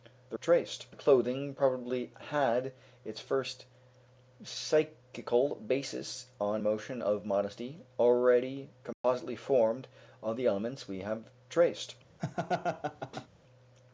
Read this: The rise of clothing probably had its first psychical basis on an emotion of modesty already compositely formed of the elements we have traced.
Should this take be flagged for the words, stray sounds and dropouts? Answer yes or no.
yes